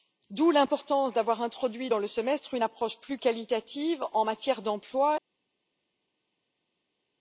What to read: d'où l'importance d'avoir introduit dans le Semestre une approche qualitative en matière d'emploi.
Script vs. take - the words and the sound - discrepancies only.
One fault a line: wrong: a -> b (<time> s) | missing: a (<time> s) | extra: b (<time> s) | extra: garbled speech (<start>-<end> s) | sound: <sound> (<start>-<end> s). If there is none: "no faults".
extra: plus (3.0 s)